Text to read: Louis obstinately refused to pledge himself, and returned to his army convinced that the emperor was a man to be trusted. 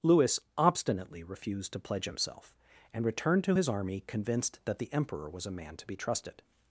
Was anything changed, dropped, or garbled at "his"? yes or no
no